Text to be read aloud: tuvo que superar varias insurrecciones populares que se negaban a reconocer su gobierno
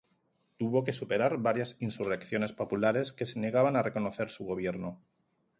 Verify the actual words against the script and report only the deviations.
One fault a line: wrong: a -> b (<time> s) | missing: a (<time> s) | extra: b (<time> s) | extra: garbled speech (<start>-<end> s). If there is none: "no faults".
no faults